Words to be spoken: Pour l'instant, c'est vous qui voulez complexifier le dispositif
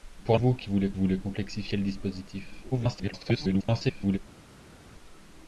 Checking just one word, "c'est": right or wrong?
wrong